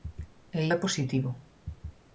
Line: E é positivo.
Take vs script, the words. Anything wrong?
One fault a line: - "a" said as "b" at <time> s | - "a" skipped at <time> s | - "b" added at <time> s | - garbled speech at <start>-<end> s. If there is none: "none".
none